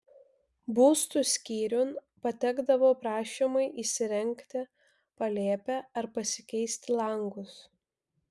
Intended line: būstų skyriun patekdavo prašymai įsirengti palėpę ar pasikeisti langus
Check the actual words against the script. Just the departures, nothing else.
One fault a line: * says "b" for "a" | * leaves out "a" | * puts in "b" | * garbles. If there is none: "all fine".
all fine